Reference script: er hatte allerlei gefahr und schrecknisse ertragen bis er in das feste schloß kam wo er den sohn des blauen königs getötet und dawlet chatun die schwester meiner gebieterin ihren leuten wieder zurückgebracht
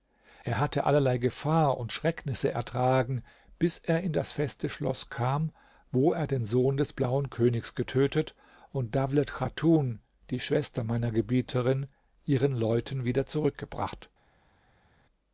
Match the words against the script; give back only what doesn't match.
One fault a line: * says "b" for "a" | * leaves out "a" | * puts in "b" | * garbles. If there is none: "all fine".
all fine